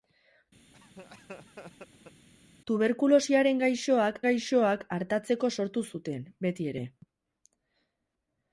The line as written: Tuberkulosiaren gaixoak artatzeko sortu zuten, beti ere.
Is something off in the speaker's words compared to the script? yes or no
yes